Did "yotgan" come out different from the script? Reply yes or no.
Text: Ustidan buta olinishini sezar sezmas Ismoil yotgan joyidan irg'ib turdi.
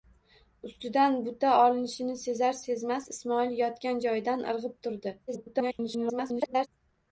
no